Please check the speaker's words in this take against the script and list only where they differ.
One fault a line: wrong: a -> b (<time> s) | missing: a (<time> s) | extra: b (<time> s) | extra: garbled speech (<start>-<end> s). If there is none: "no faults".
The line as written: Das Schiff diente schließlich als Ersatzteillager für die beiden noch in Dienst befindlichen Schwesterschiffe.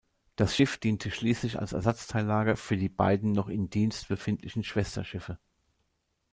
no faults